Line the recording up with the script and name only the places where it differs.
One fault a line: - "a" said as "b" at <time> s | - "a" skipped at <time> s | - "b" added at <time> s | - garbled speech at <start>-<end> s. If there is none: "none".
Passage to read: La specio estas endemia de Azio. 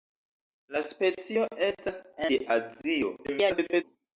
- "endemia" skipped at 2.0 s
- garbled speech at 3.2-3.8 s